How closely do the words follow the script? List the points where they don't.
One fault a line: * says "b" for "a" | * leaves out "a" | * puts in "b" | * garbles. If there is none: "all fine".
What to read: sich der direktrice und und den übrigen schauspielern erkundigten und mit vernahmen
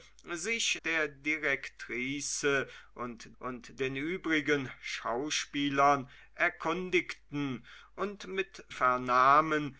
all fine